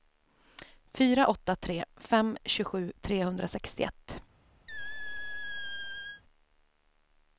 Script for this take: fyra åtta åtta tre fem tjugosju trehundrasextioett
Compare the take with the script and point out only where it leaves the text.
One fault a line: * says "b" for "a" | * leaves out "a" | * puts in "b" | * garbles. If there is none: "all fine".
* leaves out "åtta"